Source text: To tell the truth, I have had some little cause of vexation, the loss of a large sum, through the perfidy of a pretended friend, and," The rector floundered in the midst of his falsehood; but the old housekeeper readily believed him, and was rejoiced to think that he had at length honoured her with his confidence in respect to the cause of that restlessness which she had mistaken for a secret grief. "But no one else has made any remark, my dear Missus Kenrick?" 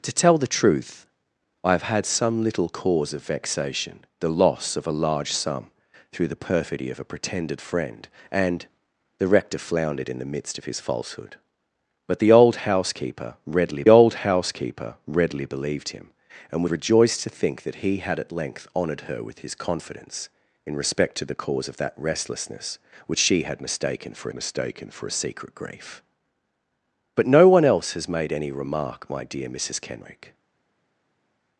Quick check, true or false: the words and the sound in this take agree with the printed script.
false